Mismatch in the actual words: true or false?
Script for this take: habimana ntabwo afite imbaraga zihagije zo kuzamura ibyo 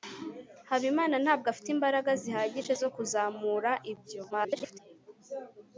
true